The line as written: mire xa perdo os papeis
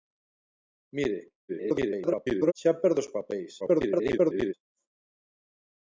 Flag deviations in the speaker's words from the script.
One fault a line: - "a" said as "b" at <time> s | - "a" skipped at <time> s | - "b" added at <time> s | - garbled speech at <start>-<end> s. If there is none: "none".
- garbled speech at 1.5-2.5 s
- garbled speech at 3.6-4.5 s